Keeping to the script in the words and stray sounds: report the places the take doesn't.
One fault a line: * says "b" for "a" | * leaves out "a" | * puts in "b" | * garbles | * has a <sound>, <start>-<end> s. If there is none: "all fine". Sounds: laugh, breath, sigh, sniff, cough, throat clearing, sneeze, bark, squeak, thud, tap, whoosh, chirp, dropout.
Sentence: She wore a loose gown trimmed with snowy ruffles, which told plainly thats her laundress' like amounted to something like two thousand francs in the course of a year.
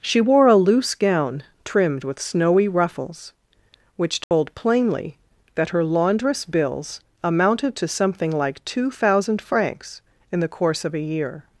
* has a dropout, 4.2-4.3 s
* says "that" for "thats"
* says "bills" for "like"